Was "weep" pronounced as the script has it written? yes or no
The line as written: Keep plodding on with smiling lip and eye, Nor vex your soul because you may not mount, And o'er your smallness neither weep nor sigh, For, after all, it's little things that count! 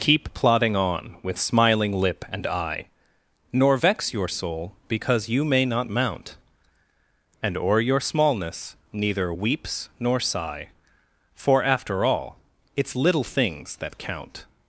no